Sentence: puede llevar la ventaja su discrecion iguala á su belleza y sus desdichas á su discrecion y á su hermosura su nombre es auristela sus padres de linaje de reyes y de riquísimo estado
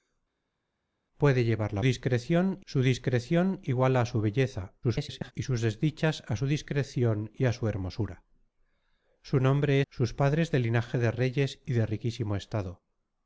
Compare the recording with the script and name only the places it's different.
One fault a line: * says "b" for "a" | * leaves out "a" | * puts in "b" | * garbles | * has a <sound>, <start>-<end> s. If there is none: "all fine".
* says "discrecion" for "ventaja"
* garbles
* leaves out "es auristela"